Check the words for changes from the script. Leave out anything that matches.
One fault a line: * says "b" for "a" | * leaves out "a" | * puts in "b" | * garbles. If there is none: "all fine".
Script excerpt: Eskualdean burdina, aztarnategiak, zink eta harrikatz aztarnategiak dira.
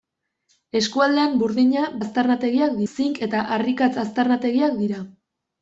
all fine